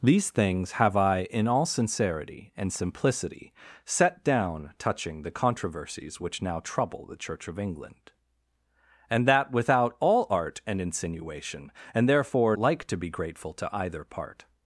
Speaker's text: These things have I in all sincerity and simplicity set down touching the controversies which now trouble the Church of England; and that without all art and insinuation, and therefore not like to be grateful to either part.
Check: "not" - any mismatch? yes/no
yes